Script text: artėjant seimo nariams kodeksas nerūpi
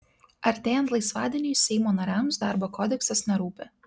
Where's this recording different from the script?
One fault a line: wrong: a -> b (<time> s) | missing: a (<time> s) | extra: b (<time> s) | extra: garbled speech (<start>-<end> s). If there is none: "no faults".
extra: laisvadieniui (0.9 s)
extra: darbo (2.5 s)